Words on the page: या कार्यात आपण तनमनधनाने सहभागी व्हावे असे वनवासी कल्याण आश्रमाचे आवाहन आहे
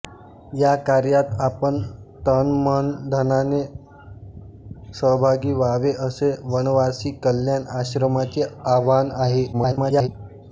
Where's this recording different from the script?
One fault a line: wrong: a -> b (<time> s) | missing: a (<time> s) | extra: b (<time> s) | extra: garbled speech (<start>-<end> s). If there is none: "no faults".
extra: garbled speech (9.5-10.1 s)